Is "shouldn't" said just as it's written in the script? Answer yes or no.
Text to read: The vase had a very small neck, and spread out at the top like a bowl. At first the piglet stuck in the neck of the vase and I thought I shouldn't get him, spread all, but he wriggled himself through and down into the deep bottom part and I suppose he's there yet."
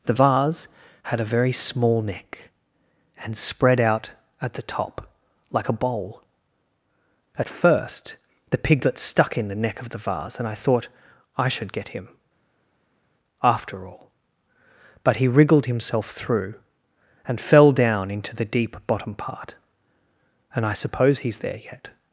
no